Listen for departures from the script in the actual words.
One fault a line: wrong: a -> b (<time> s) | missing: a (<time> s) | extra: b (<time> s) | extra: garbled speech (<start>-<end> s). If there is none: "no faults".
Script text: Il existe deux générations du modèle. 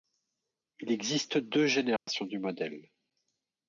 no faults